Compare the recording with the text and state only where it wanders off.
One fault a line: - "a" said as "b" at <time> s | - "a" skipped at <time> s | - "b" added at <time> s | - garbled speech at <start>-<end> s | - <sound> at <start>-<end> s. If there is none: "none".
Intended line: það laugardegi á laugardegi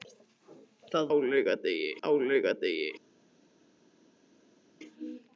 none